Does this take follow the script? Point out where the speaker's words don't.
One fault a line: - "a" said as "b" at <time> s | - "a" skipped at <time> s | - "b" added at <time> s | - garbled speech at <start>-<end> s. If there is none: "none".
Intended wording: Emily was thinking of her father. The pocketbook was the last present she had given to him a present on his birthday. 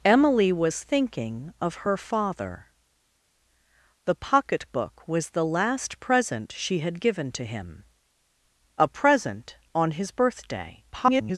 - garbled speech at 10.9-11.4 s